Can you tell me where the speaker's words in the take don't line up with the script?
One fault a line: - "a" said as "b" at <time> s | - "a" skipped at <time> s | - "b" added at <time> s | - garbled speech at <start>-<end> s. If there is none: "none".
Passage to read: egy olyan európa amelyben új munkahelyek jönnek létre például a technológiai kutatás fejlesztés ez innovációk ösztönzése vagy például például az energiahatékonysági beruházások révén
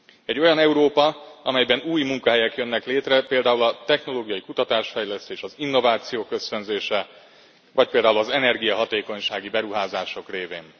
- "ez" said as "az" at 5.4 s
- "például" skipped at 8.2 s